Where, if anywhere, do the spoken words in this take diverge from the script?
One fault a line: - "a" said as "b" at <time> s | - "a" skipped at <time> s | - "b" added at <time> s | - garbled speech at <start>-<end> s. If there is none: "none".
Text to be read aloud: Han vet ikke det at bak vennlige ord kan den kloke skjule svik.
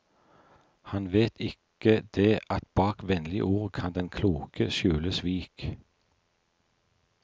none